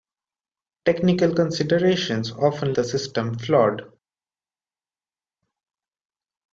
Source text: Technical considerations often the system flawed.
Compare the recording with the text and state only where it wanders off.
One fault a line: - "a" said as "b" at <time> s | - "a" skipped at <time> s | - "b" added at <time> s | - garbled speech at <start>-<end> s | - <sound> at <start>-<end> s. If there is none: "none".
none